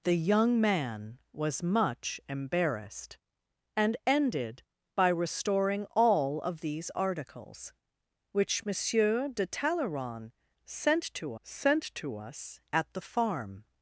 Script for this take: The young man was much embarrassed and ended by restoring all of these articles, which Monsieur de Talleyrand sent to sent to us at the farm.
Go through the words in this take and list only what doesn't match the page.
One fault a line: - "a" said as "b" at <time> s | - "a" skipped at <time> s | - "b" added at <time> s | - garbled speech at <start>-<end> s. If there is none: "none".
none